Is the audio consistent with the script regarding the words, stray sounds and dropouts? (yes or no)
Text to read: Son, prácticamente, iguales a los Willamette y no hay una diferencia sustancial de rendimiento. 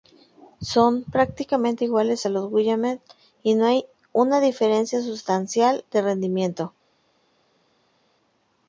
yes